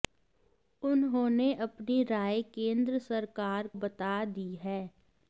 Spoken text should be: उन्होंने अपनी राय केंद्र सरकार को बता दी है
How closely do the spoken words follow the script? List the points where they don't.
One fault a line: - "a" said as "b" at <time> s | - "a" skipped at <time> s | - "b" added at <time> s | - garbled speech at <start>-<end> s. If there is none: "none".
- "को" skipped at 3.7 s